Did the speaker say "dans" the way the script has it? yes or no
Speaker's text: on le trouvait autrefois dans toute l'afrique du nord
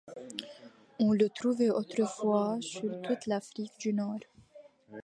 no